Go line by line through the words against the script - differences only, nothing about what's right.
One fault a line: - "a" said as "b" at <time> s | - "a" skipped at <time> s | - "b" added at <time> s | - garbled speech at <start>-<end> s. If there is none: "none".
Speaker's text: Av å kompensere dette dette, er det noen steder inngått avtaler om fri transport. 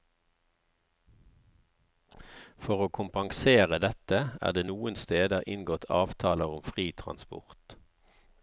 - "Av" said as "For" at 2.6 s
- "dette" skipped at 4.2 s